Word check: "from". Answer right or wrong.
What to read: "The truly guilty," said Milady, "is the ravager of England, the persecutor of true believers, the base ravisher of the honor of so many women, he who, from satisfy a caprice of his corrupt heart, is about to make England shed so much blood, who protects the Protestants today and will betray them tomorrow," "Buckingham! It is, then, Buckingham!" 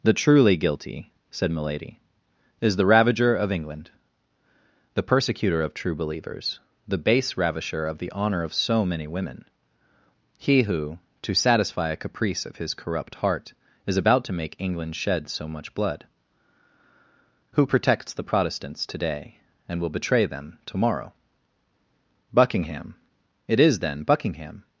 wrong